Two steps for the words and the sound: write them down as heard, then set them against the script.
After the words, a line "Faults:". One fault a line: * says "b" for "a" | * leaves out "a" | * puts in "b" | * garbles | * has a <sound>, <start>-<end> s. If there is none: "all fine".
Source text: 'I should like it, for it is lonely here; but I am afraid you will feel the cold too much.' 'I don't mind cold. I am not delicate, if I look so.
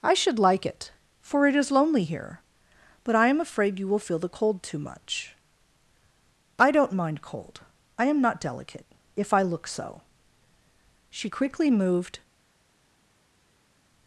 'I should like it, for it is lonely here; but I am afraid you will feel the cold too much.' 'I don't mind cold. I am not delicate, if I look so. She quickly moved
Faults:
* puts in "She quickly moved"